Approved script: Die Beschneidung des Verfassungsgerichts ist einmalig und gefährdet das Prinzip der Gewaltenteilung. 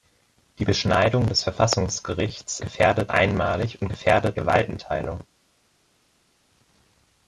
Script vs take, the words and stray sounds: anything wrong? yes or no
yes